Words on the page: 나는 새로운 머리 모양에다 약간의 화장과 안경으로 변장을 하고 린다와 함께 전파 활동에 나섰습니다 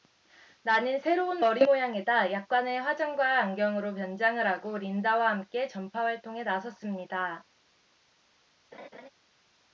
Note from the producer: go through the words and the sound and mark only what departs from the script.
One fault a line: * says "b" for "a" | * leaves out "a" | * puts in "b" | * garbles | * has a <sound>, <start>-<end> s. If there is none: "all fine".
* has a laugh, 8.7-9.1 s